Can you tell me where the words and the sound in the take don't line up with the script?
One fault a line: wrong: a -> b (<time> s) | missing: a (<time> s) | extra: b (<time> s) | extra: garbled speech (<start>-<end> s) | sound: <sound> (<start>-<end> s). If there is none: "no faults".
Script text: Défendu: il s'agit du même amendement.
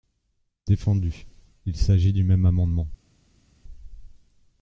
no faults